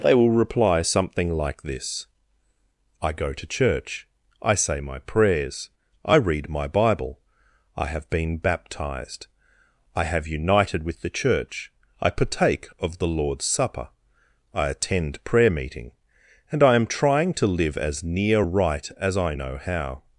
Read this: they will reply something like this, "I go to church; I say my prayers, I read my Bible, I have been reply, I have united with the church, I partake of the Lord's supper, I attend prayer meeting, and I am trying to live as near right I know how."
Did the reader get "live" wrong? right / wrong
right